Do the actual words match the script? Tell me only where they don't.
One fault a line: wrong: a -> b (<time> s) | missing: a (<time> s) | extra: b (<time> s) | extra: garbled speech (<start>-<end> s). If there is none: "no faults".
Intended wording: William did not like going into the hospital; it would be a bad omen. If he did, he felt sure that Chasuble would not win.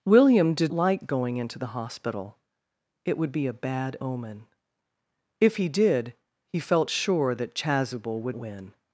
missing: not (0.7 s)
missing: not (8.4 s)